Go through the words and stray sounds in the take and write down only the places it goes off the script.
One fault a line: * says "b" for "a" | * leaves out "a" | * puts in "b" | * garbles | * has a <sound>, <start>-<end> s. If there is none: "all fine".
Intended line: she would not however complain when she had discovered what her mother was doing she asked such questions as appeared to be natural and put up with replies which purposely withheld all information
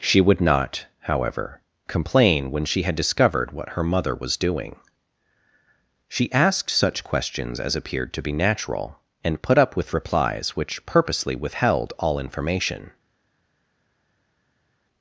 all fine